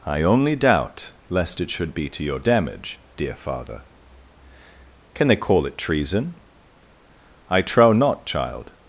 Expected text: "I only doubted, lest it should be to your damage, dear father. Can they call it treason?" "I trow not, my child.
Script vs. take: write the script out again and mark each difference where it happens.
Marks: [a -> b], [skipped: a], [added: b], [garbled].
"I only [doubted, -> doubt] lest it should be to your damage, dear father. Can they call it treason?" "I trow not, [skipped: my] child.